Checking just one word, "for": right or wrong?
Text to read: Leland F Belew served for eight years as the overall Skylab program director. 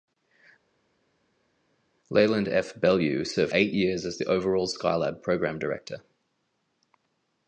wrong